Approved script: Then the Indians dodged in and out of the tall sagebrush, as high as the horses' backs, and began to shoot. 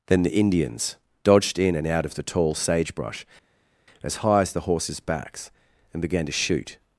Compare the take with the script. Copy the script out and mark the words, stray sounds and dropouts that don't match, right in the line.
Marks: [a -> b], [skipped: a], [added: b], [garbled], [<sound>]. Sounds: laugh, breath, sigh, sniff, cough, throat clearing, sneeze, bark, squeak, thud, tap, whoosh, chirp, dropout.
Then the Indians dodged in and out of the tall sagebrush, as high as the horses' backs, and began to shoot.